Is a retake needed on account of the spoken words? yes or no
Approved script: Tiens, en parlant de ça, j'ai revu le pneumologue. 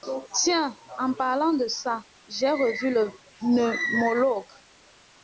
no